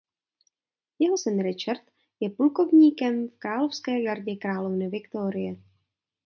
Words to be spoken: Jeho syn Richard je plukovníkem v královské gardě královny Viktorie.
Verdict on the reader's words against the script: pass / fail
pass